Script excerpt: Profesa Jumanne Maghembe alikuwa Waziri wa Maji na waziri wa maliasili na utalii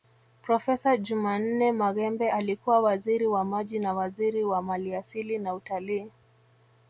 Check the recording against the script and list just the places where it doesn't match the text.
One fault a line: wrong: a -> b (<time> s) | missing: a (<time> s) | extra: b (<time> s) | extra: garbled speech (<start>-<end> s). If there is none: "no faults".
no faults